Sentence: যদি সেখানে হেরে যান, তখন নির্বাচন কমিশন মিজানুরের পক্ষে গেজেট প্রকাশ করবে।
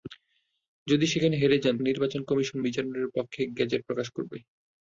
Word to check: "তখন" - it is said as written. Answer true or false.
false